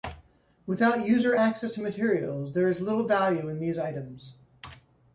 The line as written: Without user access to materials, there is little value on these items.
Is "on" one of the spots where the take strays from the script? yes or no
yes